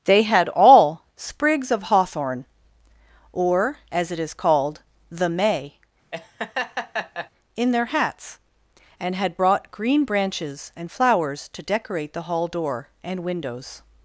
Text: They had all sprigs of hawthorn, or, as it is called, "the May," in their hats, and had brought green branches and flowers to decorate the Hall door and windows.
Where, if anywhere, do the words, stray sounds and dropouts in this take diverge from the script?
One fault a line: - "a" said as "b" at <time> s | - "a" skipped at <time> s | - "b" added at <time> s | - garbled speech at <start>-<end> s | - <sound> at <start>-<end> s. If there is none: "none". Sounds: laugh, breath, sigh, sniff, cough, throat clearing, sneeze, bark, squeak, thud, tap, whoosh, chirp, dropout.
- laugh at 6.1-7.3 s